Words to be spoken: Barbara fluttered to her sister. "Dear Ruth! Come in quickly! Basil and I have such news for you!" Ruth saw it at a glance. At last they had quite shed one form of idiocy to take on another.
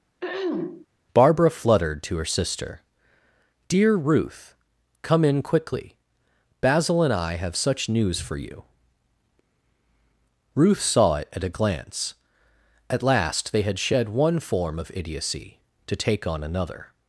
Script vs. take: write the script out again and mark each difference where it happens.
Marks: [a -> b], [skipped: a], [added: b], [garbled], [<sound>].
[throat clearing] Barbara fluttered to her sister. "Dear Ruth! Come in quickly! Basil and I have such news for you!" Ruth saw it at a glance. At last they had [skipped: quite] shed one form of idiocy to take on another.